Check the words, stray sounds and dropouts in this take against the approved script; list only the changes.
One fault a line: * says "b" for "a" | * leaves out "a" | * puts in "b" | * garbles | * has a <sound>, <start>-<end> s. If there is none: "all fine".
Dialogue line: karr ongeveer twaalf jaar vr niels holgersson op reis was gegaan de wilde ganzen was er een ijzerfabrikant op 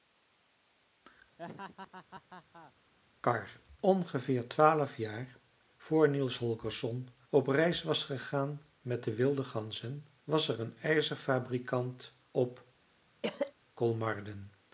* has a laugh, 1.4-2.7 s
* puts in "met"
* has a cough, 13.2-13.5 s